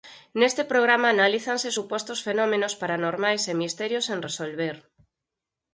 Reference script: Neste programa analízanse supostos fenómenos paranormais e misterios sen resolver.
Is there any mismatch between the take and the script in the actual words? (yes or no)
no